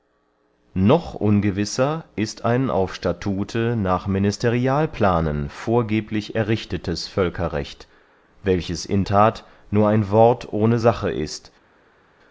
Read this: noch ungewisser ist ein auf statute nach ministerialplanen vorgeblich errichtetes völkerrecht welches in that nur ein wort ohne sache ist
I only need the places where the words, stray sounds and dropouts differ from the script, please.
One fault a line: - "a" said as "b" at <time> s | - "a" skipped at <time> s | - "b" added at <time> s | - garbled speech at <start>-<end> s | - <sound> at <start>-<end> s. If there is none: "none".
none